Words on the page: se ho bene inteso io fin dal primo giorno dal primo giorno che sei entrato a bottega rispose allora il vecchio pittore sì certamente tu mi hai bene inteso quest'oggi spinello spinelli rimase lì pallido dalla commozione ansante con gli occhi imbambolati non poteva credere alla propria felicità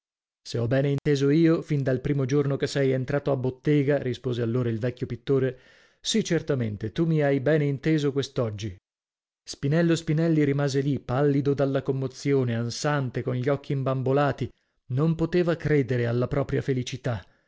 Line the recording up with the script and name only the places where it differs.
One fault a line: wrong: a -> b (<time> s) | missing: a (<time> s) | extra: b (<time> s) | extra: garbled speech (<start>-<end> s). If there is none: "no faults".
missing: dal primo giorno (2.5 s)